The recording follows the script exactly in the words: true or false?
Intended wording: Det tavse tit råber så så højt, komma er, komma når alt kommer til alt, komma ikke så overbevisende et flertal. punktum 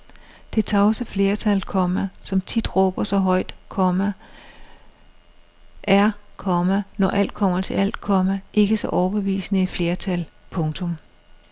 false